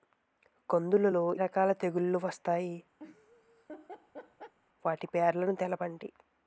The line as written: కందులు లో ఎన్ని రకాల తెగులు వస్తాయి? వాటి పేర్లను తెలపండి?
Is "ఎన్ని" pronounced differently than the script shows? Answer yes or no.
yes